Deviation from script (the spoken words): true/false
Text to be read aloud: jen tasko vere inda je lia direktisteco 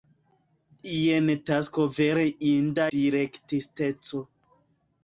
true